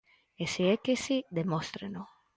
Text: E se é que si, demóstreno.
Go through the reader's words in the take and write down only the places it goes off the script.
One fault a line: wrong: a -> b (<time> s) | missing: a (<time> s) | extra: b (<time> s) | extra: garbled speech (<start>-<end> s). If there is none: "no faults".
no faults